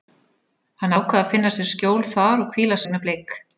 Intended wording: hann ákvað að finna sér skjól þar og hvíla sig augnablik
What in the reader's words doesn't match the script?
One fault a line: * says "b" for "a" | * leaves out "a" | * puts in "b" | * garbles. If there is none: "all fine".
* leaves out "sig"